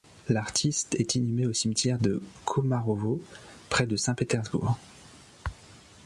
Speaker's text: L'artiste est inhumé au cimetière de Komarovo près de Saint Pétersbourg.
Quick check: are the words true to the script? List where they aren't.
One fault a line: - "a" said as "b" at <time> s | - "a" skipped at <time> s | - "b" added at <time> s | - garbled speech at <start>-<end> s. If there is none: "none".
none